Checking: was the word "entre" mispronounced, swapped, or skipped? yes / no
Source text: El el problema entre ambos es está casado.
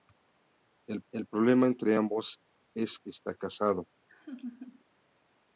no